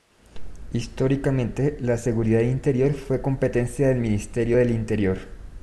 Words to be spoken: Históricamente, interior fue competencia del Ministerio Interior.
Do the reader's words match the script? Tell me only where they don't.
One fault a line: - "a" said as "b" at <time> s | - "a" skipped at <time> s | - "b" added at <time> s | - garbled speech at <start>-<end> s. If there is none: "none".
- "la seguridad" added at 1.8 s
- "del" added at 4.5 s